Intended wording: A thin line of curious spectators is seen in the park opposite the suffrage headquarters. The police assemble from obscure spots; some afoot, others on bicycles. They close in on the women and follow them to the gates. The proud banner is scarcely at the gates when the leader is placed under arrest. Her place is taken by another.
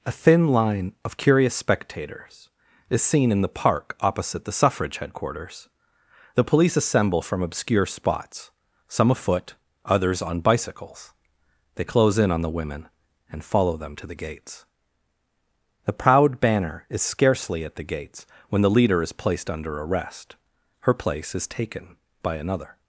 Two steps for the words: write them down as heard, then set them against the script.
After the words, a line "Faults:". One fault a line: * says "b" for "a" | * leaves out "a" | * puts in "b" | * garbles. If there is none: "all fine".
A thin line of curious spectators is seen in the park opposite the suffrage headquarters. The police assemble from obscure spots; some afoot, others on bicycles. They close in on the women and follow them to the gates. The proud banner is scarcely at the gates when the leader is placed under arrest. Her place is taken by another.
Faults:
all fine